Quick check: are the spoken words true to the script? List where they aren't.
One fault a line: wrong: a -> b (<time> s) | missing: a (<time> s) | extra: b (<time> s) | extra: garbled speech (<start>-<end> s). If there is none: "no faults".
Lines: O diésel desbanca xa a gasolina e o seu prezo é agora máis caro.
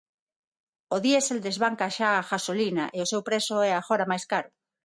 no faults